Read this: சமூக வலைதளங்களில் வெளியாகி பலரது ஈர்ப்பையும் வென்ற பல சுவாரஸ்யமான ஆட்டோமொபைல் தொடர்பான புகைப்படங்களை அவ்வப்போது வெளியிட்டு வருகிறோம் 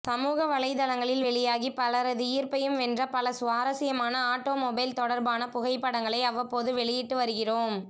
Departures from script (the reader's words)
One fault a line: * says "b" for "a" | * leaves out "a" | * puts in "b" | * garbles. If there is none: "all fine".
all fine